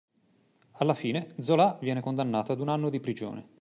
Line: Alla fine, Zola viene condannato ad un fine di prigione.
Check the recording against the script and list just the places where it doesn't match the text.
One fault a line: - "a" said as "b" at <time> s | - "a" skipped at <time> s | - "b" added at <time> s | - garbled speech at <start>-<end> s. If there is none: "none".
- "fine" said as "anno" at 2.7 s